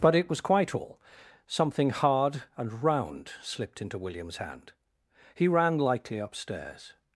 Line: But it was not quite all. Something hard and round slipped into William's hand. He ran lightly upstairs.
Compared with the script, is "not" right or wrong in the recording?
wrong